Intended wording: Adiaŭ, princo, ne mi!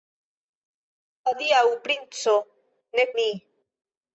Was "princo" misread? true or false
false